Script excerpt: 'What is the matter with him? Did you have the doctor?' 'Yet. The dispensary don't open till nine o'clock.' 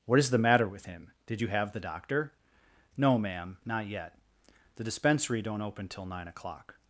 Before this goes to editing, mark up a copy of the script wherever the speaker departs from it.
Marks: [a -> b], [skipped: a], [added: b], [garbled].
'What is the matter with him? Did you have the doctor?' [added: No ma'am not] 'Yet. The dispensary don't open till nine o'clock.'